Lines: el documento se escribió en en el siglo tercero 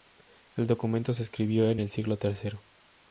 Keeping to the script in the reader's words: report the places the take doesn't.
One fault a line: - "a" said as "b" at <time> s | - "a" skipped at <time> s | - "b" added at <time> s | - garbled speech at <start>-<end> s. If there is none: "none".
- "en" skipped at 1.8 s